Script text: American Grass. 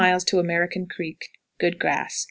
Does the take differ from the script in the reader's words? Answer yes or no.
yes